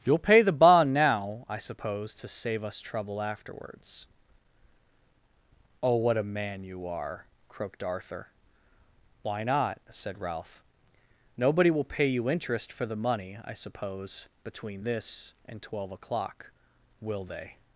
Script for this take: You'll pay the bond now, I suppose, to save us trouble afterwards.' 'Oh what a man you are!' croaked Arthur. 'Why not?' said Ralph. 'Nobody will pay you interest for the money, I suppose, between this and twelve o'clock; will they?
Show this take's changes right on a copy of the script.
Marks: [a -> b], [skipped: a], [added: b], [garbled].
You'll pay the bond now, I suppose, to save us trouble afterwards.' 'Oh what a man you are!' croaked Arthur. 'Why not?' said Ralph. 'Nobody will pay you interest for the money, I suppose, between this and twelve o'clock; will they?